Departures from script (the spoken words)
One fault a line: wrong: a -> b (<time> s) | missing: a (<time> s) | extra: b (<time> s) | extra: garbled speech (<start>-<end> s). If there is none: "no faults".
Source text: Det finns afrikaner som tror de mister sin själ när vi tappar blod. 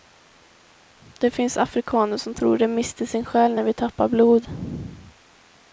no faults